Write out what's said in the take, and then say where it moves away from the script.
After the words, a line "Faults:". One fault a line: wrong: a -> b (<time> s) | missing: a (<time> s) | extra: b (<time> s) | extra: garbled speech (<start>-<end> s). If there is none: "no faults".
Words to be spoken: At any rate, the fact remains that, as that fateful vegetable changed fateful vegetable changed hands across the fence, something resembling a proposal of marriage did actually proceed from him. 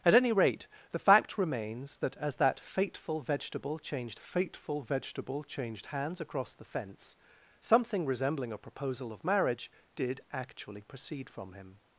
At any rate, the fact remains that, as that fateful vegetable changed fateful vegetable changed hands across the fence, something resembling a proposal of marriage did actually proceed from him.
Faults:
no faults